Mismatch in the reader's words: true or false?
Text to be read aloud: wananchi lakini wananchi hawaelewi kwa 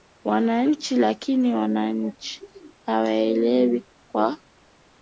false